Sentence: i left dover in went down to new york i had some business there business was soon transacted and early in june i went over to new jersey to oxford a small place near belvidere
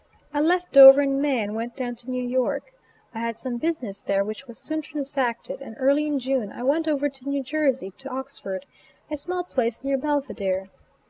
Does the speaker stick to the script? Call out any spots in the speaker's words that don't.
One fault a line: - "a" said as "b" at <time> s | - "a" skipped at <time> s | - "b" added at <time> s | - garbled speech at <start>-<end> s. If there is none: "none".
- "may and" added at 1.2 s
- "business" said as "which" at 4.2 s